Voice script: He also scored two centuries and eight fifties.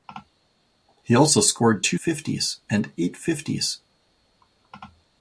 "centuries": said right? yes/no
no